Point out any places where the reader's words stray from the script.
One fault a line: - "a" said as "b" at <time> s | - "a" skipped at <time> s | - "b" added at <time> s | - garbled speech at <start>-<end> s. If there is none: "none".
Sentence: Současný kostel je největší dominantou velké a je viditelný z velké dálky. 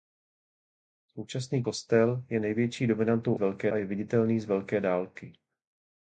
none